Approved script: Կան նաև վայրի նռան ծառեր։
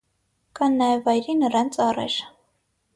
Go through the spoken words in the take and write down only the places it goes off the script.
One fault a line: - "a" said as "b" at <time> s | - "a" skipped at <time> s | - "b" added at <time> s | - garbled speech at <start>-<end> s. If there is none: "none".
none